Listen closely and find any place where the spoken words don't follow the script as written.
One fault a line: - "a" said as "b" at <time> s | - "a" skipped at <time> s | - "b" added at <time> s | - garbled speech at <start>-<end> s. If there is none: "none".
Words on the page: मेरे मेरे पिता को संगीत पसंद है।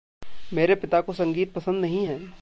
- "मेरे" skipped at 0.8 s
- "नहीं" added at 1.8 s